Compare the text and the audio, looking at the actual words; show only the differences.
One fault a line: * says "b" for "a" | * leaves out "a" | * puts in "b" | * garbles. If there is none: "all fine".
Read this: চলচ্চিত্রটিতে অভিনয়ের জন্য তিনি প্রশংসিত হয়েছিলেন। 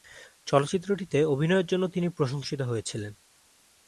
all fine